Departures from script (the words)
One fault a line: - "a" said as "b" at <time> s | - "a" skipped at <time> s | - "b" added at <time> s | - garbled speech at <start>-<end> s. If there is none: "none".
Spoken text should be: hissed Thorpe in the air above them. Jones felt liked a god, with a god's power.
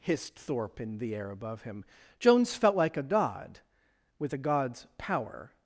- "them" said as "him" at 1.6 s
- "liked" said as "like" at 2.8 s